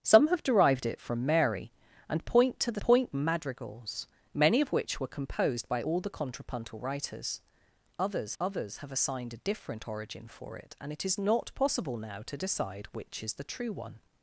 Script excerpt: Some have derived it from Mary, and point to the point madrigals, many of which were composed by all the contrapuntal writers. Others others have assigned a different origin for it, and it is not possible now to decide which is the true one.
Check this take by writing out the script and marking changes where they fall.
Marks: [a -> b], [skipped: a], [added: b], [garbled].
Some have derived it from Mary, and point to the point madrigals, many of which were composed by all the contrapuntal writers. Others others have assigned a different origin for it, and it is not possible now to decide which is the true one.